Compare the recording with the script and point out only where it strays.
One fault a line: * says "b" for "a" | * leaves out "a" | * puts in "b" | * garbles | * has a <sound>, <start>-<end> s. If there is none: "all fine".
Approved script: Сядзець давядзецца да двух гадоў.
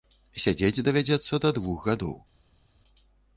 all fine